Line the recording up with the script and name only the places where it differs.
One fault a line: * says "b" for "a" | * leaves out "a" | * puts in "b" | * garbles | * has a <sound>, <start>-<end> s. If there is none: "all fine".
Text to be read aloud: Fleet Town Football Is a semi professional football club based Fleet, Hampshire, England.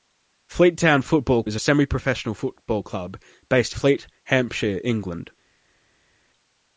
all fine